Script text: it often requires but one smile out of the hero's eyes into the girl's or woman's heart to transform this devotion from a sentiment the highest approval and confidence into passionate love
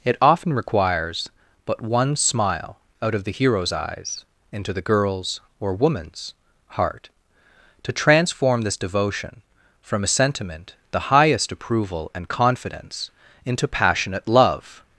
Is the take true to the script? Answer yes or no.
yes